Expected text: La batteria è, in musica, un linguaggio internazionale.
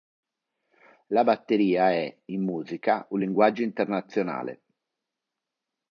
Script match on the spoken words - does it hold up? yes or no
yes